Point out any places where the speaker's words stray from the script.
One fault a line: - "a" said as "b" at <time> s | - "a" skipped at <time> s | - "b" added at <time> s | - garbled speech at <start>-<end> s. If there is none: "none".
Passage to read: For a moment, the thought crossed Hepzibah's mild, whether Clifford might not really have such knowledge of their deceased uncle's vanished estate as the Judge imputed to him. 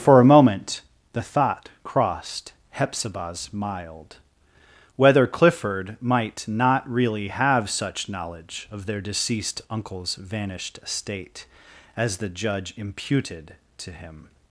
none